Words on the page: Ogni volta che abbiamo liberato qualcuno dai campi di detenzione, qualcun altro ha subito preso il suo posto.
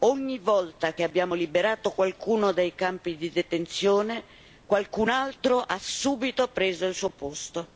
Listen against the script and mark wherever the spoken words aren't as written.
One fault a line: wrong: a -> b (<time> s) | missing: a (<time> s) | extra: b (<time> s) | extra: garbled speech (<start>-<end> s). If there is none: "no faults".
no faults